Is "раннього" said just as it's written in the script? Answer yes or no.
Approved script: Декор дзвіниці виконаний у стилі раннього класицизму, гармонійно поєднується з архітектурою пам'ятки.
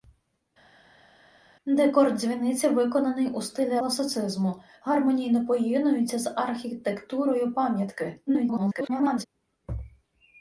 no